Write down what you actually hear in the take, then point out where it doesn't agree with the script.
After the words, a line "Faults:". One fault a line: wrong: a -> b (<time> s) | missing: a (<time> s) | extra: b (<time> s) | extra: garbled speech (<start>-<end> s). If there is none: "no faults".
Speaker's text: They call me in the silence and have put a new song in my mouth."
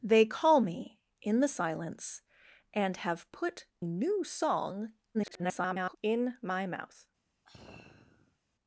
They call me in the silence and have put new song [garbled] in my mouth."
Faults:
missing: a (3.6 s)
extra: garbled speech (5.1-6.0 s)